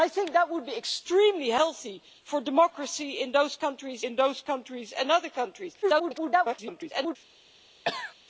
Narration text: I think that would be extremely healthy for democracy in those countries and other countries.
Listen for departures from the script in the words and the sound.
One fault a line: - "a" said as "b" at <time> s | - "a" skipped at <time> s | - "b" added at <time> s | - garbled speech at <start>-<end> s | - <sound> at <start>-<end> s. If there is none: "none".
- "in those countries" added at 4.0 s
- garbled speech at 5.8-7.2 s
- cough at 7.8-8.1 s